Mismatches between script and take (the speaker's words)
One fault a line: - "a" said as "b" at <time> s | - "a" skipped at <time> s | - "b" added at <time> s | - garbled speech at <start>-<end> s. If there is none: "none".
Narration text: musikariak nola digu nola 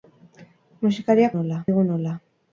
none